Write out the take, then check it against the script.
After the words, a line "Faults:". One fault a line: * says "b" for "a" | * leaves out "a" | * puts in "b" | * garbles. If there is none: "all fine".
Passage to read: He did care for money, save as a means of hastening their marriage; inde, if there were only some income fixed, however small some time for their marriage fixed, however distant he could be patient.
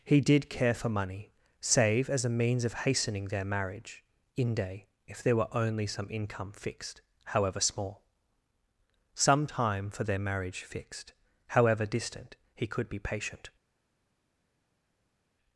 He did care for money, save as a means of hastening their marriage; inde, if there were only some income fixed, however small some time for their marriage fixed, however distant he could be patient.
Faults:
all fine